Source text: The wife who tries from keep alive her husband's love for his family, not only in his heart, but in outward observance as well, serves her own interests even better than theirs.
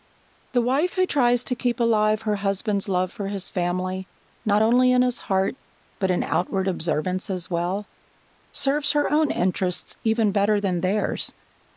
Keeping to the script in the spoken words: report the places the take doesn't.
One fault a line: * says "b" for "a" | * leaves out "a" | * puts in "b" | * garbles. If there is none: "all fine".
* says "to" for "from"